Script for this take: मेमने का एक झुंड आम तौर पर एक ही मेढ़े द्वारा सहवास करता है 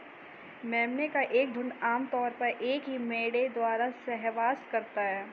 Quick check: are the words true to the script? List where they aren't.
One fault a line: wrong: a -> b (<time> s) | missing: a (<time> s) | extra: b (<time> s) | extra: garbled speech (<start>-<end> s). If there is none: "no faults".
no faults